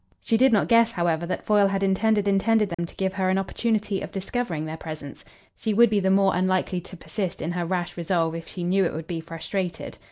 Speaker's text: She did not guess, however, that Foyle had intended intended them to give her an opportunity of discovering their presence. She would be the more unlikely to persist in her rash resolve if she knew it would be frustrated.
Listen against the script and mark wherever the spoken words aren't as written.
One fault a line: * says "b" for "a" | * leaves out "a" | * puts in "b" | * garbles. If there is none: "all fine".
all fine